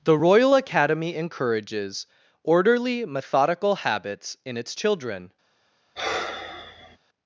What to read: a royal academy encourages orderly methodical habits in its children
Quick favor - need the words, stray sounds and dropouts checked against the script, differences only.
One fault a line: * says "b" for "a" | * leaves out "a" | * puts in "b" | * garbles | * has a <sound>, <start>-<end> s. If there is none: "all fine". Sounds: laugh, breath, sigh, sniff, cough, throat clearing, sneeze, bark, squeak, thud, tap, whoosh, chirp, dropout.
* says "the" for "a"
* has a sigh, 6.0-7.0 s